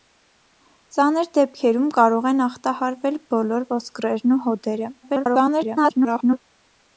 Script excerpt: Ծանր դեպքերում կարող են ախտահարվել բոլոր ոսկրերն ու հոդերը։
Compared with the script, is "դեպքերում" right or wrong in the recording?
right